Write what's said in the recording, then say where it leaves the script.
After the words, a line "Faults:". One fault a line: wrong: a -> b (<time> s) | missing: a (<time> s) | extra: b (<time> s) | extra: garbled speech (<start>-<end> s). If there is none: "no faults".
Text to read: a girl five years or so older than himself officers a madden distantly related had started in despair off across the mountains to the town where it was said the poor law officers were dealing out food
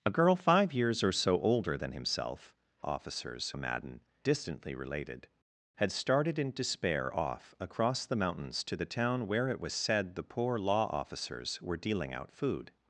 a girl five years or so older than himself officers a madden distantly related had started in despair off across the mountains to the town where it was said the poor law officers were dealing out food
Faults:
no faults